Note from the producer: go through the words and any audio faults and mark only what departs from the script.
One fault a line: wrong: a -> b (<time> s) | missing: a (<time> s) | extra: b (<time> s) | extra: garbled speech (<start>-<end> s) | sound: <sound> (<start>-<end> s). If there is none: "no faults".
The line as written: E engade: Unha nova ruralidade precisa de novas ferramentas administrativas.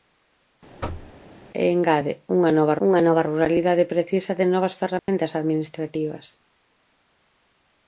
sound: thud (0.8-1.1 s)
extra: Unha nova (2.9 s)
sound: dropout (5.0-5.1 s)